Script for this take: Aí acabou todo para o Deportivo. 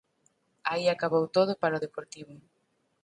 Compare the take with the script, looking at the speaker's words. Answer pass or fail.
pass